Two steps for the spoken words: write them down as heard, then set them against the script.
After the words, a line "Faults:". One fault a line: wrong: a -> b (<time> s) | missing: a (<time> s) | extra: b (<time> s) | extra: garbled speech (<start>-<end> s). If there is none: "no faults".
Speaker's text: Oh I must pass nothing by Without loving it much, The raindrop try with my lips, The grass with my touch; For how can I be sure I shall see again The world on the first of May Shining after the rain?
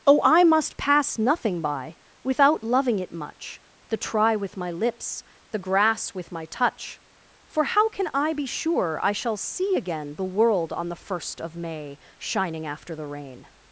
Oh I must pass nothing by Without loving it much, The try with my lips, The grass with my touch; For how can I be sure I shall see again The world on the first of May Shining after the rain?
Faults:
missing: raindrop (4.0 s)